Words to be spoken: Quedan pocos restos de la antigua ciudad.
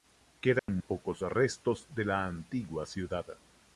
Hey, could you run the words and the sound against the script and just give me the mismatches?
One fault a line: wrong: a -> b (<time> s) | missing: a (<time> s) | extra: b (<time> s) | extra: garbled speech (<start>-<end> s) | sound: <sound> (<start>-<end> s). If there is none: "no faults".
sound: dropout (0.6-0.7 s)